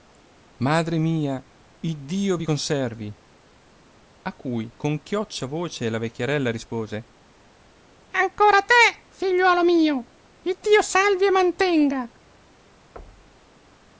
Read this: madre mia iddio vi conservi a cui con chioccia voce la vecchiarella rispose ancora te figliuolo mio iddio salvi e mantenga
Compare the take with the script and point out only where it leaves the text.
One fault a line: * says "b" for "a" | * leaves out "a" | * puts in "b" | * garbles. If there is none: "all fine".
all fine